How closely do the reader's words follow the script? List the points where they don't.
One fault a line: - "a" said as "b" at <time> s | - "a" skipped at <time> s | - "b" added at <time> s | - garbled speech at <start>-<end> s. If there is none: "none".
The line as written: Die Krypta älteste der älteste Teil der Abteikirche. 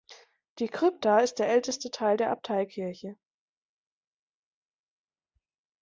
- "älteste" said as "ist" at 1.2 s